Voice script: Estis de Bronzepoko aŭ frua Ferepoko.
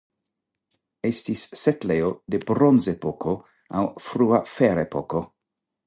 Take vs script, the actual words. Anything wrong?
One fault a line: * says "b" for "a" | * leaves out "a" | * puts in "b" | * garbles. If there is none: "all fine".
* puts in "setlejo"